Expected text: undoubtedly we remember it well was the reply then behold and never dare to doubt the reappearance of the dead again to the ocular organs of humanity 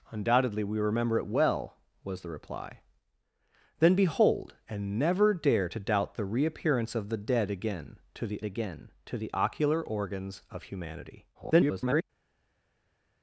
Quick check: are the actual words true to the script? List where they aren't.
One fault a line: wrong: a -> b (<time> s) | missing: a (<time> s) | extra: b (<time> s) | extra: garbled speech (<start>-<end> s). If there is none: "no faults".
extra: again to the (8.4 s)
extra: garbled speech (11.3-12.0 s)